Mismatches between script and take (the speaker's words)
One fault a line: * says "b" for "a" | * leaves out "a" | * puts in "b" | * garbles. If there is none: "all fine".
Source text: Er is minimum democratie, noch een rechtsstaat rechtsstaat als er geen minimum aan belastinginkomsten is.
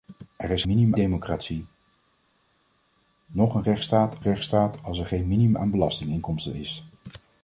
all fine